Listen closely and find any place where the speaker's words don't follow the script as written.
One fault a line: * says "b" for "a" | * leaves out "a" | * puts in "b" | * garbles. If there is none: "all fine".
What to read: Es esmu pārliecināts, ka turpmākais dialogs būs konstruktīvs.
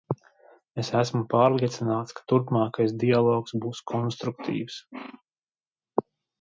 all fine